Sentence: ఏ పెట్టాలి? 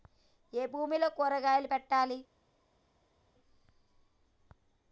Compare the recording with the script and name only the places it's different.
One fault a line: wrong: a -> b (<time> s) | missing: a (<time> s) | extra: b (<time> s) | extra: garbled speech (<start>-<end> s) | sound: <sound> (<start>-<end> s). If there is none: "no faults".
extra: భూమిలో కూరగాయలు (0.7 s)